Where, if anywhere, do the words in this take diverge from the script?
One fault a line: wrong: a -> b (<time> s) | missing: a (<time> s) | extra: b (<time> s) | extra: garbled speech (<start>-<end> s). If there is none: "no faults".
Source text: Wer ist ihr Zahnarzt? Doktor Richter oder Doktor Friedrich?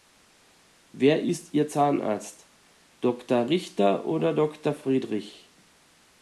no faults